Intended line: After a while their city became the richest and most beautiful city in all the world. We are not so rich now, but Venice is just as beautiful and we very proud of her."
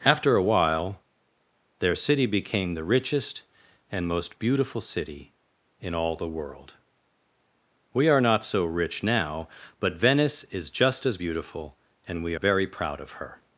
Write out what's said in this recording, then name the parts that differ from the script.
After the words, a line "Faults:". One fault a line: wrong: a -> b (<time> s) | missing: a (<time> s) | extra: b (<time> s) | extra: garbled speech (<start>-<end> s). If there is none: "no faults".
After a while their city became the richest and most beautiful city in all the world. We are not so rich now, but Venice is just as beautiful and we very proud of her."
Faults:
no faults